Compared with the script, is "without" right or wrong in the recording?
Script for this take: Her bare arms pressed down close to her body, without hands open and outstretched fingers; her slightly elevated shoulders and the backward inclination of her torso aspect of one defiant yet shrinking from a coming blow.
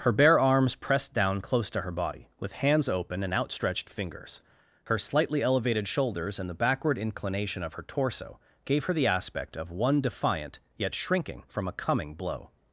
wrong